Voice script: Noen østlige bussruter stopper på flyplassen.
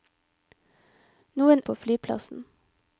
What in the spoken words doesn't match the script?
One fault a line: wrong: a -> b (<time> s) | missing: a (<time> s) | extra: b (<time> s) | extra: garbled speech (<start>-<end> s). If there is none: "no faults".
missing: østlige bussruter stopper (1.6 s)